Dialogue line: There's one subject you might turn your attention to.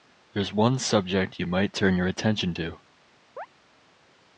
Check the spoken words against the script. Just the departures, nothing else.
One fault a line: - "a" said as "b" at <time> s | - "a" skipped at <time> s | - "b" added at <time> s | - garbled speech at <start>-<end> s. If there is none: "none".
none